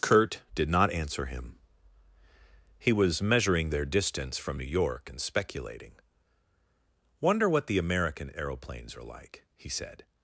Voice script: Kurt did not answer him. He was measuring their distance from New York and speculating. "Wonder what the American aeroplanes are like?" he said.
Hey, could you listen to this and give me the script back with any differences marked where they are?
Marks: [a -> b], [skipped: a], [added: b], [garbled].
Kurt did not answer him. He was measuring their distance from New York and speculating. "Wonder what the American aeroplanes are like?" he said.